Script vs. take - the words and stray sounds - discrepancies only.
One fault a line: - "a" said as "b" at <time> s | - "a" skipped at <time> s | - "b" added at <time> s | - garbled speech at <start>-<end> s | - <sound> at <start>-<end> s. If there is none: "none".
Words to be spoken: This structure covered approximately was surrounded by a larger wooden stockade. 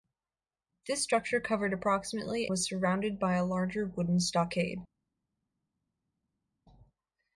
none